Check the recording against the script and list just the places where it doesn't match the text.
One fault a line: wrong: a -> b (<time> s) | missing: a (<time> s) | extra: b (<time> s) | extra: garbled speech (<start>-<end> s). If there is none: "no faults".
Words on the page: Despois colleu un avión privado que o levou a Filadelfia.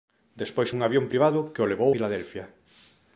missing: colleu (0.7 s)
missing: a (1.9 s)